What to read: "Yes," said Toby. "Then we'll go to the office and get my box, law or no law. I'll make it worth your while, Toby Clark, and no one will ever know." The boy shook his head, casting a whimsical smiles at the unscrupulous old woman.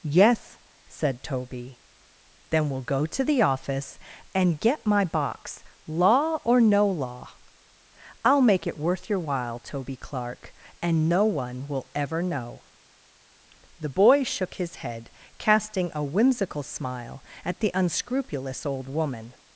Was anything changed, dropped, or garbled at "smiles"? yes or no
yes